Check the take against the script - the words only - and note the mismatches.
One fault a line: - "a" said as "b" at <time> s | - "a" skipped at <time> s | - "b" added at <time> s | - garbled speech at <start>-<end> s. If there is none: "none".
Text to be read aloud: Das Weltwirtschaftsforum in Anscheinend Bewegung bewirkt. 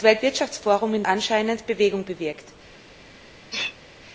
none